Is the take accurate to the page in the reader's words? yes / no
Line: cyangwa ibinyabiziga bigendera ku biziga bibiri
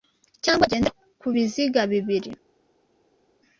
no